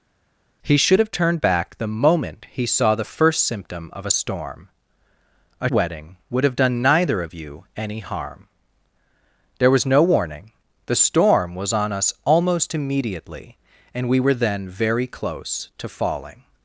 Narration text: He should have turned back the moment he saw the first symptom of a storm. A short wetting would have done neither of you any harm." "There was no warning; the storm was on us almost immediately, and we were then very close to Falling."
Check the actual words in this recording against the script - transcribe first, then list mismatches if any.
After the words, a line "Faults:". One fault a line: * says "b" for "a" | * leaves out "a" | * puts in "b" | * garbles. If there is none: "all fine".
He should have turned back the moment he saw the first symptom of a storm. A wetting would have done neither of you any harm." "There was no warning; the storm was on us almost immediately, and we were then very close to Falling."
Faults:
* leaves out "short"